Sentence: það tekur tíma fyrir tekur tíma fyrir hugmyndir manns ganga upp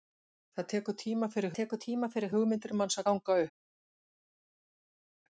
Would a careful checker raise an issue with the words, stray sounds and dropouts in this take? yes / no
no